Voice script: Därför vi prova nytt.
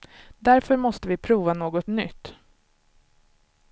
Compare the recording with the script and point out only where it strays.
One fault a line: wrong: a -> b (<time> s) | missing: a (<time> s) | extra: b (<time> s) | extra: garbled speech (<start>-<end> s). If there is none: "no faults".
extra: måste (0.8 s)
extra: något (1.5 s)